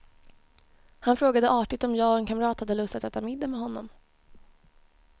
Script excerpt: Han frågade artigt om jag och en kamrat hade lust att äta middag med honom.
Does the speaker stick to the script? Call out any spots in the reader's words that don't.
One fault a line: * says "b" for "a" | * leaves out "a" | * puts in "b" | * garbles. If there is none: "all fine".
all fine